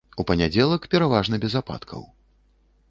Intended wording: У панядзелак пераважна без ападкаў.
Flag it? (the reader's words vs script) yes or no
no